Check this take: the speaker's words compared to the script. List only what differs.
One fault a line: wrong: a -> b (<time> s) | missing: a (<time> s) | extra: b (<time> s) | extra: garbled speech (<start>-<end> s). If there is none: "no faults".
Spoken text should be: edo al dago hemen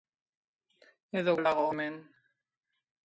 no faults